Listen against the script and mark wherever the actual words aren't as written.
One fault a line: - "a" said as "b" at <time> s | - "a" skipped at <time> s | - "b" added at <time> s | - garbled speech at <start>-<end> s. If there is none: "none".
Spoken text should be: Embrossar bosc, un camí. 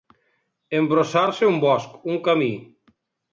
- "se un" added at 1.4 s